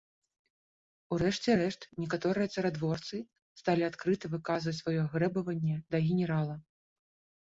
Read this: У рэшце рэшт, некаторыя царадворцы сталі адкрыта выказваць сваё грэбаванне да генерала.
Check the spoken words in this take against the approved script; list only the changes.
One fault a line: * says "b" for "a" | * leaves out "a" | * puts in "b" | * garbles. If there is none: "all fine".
all fine